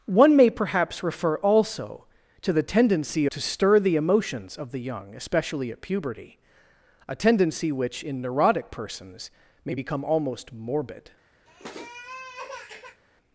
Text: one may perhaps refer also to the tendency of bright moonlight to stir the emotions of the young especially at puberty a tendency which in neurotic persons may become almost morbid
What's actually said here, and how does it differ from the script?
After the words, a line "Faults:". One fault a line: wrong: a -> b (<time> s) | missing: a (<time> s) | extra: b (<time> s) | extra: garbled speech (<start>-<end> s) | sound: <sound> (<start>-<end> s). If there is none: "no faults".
one may perhaps refer also to the tendency to stir the emotions of the young especially at puberty a tendency which in neurotic persons may become almost morbid
Faults:
missing: of bright moonlight (3.2 s)
sound: sniff (11.5-13.0 s)